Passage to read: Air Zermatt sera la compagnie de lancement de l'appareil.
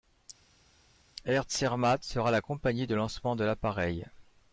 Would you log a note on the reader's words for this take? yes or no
no